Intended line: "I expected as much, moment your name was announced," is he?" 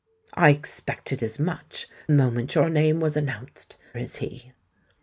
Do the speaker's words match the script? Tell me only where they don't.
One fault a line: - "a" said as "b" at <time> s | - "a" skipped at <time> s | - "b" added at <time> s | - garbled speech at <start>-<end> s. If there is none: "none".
none